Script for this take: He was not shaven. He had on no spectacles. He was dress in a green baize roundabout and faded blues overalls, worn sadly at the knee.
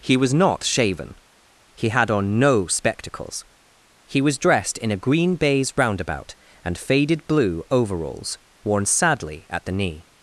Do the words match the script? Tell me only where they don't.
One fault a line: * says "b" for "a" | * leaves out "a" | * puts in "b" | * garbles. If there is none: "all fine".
* says "dressed" for "dress"
* says "blue" for "blues"